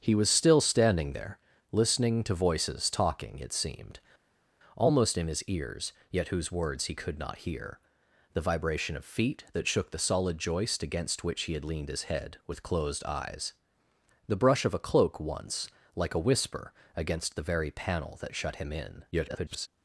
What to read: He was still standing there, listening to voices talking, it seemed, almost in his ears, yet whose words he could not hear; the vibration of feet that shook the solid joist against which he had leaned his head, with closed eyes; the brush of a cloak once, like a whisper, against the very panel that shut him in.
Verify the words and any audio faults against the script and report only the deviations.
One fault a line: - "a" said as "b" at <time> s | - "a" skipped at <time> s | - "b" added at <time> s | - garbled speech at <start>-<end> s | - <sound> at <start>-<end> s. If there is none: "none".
- garbled speech at 19.1-19.7 s